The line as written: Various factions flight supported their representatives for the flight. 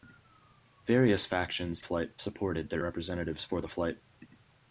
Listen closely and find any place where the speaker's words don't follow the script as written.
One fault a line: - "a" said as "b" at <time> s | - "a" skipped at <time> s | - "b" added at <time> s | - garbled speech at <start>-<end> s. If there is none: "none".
none